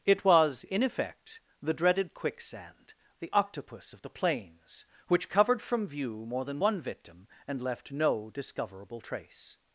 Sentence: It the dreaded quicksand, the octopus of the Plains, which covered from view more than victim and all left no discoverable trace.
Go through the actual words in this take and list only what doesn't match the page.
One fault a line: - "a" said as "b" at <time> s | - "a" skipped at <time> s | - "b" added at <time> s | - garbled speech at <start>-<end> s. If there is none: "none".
- "was in effect" added at 0.2 s
- "one" added at 6.6 s
- "all" skipped at 7.6 s